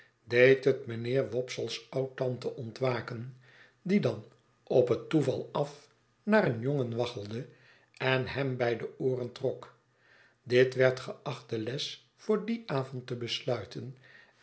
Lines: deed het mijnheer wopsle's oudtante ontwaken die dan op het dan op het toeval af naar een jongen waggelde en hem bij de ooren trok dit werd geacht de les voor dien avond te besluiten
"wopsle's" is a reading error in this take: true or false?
false